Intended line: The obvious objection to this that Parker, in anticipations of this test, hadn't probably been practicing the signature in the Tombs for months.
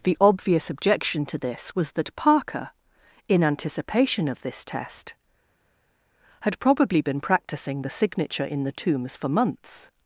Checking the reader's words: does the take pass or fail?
fail